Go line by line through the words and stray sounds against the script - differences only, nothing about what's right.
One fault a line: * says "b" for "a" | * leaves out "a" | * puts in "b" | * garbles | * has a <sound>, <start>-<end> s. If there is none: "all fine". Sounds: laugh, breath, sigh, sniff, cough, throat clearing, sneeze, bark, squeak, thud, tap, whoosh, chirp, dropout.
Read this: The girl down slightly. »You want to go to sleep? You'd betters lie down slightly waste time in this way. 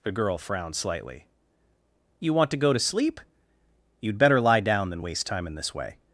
* says "frowned" for "down"
* says "better" for "betters"
* says "than" for "slightly"